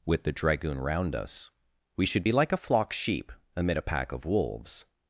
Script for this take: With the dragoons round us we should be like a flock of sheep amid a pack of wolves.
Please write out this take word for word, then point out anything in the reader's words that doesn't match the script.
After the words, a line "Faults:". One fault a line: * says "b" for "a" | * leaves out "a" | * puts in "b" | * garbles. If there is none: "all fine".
With the dragoon round us we should be like a flock sheep amid a pack of wolves.
Faults:
* says "dragoon" for "dragoons"
* leaves out "of"